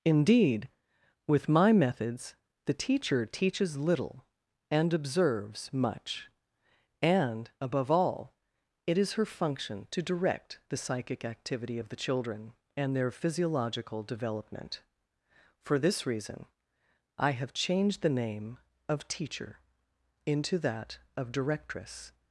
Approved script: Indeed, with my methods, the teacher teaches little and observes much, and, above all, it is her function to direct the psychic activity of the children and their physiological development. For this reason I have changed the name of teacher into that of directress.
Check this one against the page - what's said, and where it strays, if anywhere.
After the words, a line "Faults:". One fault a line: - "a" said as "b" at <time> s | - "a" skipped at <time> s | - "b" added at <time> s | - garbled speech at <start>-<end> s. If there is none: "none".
Indeed, with my methods, the teacher teaches little and observes much, and, above all, it is her function to direct the psychic activity of the children and their physiological development. For this reason I have changed the name of teacher into that of directress.
Faults:
none